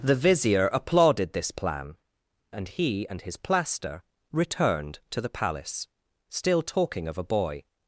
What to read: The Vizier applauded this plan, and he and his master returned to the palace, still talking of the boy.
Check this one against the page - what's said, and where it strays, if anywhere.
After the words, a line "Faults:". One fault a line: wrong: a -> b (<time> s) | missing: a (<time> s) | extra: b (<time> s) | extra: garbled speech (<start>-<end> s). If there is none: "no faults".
The Vizier applauded this plan, and he and his plaster returned to the palace, still talking of a boy.
Faults:
wrong: master -> plaster (3.4 s)
wrong: the -> a (7.2 s)